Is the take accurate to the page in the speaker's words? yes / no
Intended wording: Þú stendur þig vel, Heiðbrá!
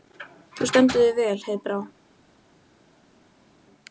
yes